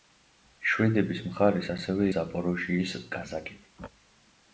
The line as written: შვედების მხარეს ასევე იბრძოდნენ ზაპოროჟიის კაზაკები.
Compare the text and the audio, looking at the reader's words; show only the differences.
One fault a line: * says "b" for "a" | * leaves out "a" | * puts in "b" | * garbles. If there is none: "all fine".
* leaves out "იბრძოდნენ"